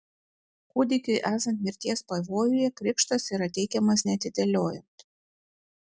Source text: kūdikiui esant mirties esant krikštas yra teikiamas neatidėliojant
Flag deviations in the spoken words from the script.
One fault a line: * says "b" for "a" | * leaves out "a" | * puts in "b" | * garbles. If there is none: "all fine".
* says "pavojuje" for "esant"